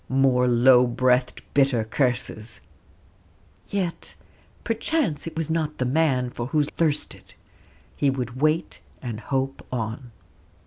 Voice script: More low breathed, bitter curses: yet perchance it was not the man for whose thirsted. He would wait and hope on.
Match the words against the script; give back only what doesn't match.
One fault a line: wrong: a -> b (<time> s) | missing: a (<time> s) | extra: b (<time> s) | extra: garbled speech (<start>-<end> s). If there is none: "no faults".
no faults